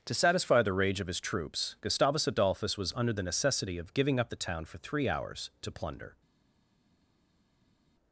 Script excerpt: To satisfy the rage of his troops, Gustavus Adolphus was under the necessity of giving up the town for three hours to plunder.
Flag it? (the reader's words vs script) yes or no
no